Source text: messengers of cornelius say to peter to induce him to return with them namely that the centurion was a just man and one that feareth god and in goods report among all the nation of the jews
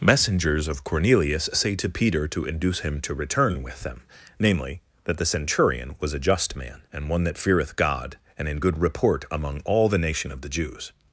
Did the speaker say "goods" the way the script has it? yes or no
no